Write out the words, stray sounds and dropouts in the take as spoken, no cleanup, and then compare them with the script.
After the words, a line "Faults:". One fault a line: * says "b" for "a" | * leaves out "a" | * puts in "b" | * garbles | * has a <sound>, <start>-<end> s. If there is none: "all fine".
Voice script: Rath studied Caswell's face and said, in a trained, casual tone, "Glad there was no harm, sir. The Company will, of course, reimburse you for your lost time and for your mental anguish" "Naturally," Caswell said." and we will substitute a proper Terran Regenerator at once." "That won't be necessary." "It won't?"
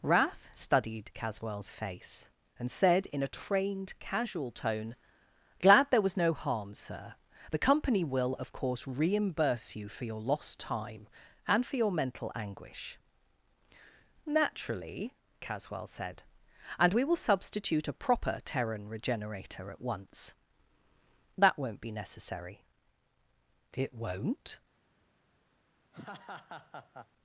Rath studied Caswell's face and said, in a trained, casual tone, "Glad there was no harm, sir. The Company will, of course, reimburse you for your lost time and for your mental anguish" "Naturally," Caswell said." and we will substitute a proper Terran Regenerator at once." "That won't be necessary." "It won't?"
Faults:
* has a laugh, 25.9-27.1 s